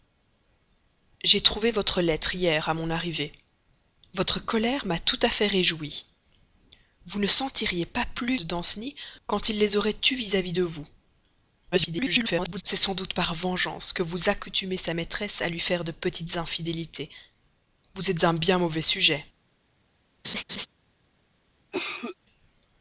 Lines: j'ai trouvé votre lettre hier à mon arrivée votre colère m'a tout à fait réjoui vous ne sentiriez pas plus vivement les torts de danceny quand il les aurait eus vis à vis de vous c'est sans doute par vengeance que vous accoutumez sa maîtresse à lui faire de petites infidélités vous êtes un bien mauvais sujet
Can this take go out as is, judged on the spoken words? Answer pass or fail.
fail